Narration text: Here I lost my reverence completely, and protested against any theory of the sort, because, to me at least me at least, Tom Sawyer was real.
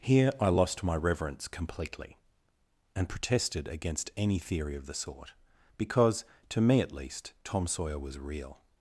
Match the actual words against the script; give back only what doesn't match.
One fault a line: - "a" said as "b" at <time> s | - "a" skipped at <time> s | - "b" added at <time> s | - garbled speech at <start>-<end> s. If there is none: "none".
- "me at least" skipped at 7.3 s